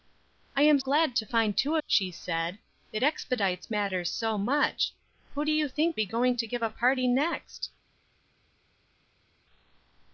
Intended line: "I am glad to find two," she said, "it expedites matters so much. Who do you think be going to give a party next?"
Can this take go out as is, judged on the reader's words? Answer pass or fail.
pass